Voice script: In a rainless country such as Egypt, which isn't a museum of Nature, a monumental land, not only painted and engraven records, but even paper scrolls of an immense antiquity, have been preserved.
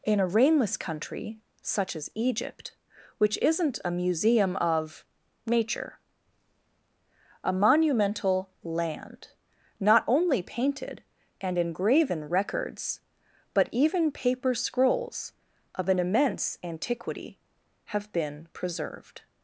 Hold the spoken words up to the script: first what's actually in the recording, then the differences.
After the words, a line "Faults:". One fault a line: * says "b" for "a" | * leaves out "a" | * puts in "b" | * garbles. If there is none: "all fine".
In a rainless country such as Egypt, which isn't a museum of Nature, a monumental land, not only painted and engraven records, but even paper scrolls of an immense antiquity, have been preserved.
Faults:
all fine